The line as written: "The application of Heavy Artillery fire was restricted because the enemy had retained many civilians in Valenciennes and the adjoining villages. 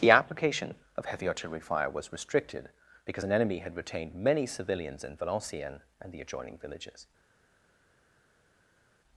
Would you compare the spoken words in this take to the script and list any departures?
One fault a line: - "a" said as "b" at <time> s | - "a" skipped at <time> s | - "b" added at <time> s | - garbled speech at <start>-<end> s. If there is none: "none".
- "the" said as "an" at 3.2 s